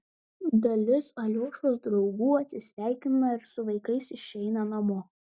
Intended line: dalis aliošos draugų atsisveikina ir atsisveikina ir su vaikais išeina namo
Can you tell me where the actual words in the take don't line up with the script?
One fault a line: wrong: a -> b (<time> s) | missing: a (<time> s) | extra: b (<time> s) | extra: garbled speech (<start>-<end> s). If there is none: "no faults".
missing: atsisveikina ir (3.5 s)